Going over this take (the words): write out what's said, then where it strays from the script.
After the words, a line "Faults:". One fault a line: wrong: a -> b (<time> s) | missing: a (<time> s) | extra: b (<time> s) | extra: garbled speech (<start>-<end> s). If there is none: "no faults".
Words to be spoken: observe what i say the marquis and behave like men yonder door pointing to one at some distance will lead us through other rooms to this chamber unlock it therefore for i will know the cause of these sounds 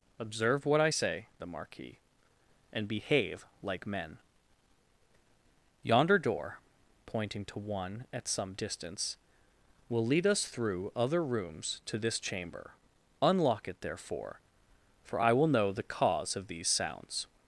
observe what i say the marquis and behave like men yonder door pointing to one at some distance will lead us through other rooms to this chamber unlock it therefore for i will know the cause of these sounds
Faults:
no faults